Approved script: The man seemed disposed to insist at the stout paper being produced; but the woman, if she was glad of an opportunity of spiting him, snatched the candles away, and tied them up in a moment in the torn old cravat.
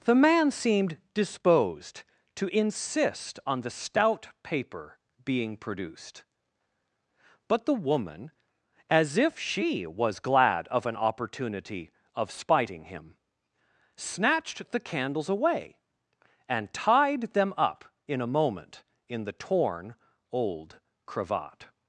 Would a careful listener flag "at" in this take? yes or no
yes